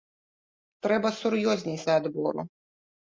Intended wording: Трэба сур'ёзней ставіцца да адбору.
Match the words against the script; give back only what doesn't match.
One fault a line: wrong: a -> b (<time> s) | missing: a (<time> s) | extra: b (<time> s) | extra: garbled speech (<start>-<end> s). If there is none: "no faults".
missing: ставіцца (1.8 s)